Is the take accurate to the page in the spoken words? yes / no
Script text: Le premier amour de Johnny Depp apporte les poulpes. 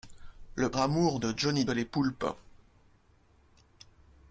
no